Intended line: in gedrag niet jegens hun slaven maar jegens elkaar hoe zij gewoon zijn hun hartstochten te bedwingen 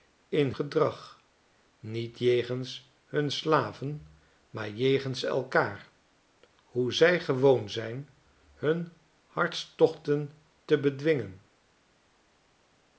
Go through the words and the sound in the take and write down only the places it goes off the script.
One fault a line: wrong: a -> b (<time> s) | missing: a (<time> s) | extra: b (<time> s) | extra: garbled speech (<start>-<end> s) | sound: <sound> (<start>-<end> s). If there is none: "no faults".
no faults